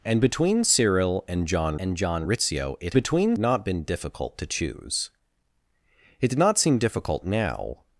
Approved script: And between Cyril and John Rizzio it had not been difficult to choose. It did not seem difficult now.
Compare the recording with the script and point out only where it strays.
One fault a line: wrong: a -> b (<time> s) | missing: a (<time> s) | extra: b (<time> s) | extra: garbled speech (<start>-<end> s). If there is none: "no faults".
extra: and John (1.8 s)
wrong: had -> between (2.9 s)